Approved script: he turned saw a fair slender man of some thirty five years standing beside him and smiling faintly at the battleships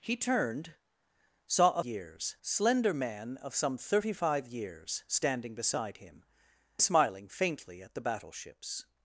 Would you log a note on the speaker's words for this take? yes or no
yes